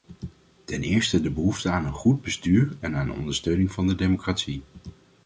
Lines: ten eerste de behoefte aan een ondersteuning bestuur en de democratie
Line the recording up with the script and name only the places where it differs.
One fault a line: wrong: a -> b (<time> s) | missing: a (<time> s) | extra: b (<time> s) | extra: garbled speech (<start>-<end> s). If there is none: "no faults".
wrong: ondersteuning -> goed (1.9 s)
extra: aan ondersteuning van (3.0 s)